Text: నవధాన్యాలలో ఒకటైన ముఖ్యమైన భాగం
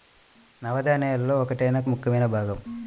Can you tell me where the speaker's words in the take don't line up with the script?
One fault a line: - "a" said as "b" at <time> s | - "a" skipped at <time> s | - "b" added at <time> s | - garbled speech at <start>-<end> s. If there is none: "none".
none